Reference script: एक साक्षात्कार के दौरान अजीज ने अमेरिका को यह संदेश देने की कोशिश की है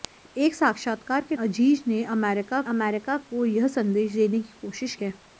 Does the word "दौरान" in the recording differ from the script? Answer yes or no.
yes